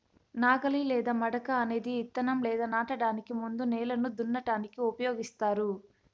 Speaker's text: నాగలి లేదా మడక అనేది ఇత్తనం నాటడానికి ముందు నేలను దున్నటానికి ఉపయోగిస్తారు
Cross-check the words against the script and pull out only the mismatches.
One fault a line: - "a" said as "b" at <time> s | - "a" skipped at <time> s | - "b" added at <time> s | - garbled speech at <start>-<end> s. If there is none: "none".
- "లేదా" added at 2.4 s